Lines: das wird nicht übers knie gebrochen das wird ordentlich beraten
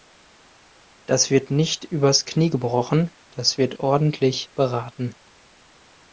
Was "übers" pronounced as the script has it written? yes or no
yes